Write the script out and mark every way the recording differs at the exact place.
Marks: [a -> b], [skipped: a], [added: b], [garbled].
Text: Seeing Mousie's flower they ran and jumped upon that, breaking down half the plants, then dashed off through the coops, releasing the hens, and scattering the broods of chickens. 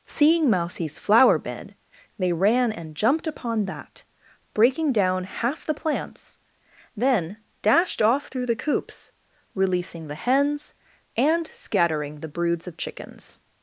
Seeing Mousie's flower [added: bed] they ran and jumped upon that, breaking down half the plants, then dashed off through the coops, releasing the hens, and scattering the broods of chickens.